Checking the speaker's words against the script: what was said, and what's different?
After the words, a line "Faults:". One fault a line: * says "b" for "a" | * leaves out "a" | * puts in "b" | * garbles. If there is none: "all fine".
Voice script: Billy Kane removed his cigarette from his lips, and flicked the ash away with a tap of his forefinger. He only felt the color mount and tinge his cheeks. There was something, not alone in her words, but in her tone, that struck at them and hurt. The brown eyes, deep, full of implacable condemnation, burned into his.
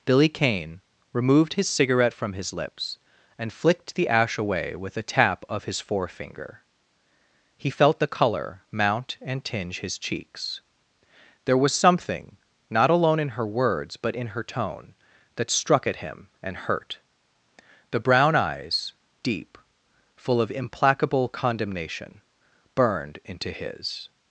Billy Kane removed his cigarette from his lips, and flicked the ash away with a tap of his forefinger. He felt the color mount and tinge his cheeks. There was something, not alone in her words, but in her tone, that struck at him and hurt. The brown eyes, deep, full of implacable condemnation, burned into his.
Faults:
* leaves out "only"
* says "him" for "them"